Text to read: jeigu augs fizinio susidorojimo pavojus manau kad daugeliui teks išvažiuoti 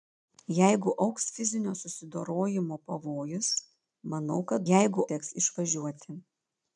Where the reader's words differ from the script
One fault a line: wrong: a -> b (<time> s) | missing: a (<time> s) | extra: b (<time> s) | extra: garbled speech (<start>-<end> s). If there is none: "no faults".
wrong: daugeliui -> jeigu (4.7 s)